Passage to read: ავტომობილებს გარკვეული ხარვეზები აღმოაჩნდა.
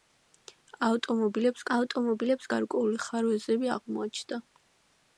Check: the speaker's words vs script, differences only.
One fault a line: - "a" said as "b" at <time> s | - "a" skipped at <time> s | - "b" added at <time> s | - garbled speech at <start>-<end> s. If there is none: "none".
- "ავტომობილებს" added at 1.8 s